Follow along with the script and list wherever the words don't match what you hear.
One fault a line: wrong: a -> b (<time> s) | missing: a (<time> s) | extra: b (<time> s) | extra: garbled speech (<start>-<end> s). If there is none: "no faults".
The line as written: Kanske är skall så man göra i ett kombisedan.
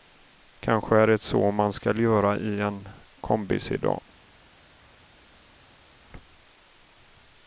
wrong: skall -> det (1.1 s)
extra: skall (1.7 s)
wrong: ett -> en (2.6 s)